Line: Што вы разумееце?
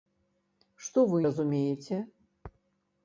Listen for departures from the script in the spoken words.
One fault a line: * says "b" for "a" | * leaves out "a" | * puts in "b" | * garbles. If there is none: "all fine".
all fine